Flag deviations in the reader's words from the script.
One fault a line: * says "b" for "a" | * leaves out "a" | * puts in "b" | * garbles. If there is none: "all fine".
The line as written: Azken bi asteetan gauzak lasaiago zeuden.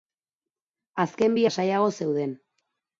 * leaves out "asteetan gauzak"